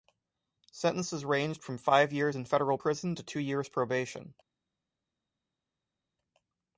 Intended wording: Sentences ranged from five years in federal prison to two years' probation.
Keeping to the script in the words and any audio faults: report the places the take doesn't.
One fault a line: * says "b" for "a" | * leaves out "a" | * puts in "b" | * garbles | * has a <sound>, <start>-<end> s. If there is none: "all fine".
all fine